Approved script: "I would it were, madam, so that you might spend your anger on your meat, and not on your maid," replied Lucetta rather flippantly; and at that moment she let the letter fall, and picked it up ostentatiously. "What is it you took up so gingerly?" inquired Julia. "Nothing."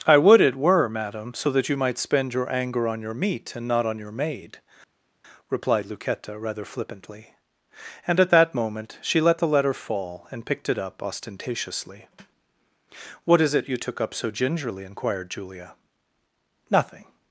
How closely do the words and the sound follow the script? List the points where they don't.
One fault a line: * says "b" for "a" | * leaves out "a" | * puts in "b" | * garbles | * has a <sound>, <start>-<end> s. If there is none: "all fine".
all fine